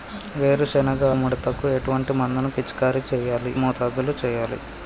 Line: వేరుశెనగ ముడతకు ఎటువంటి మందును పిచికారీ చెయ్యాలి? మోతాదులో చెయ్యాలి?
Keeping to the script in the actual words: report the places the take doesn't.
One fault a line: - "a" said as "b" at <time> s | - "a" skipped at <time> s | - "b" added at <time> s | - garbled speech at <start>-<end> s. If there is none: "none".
none